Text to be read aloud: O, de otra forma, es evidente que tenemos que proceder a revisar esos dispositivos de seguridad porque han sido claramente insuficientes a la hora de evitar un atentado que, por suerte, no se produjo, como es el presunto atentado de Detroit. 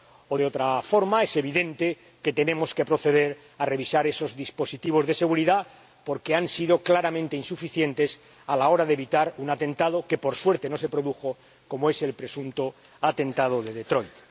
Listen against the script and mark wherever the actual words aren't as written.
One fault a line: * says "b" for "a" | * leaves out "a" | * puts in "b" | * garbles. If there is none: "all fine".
all fine